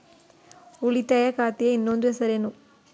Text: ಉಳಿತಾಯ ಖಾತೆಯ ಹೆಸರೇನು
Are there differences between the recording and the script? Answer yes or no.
yes